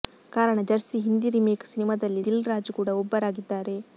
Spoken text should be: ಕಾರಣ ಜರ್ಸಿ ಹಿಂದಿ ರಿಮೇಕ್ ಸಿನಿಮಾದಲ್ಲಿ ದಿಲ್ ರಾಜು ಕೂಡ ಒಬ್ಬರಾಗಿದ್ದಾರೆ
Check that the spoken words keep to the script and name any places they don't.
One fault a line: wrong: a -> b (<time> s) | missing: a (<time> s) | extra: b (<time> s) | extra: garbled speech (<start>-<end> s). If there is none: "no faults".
no faults